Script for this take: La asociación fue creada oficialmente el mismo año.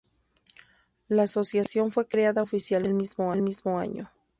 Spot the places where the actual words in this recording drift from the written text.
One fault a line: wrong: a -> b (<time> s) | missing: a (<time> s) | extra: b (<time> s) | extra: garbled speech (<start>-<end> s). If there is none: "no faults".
no faults